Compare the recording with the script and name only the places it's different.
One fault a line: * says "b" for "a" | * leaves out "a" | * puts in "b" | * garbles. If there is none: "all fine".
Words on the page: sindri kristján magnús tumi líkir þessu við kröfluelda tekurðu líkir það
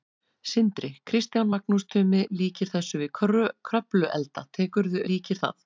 all fine